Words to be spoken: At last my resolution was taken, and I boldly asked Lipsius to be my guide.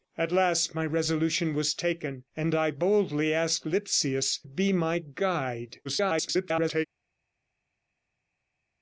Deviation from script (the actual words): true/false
true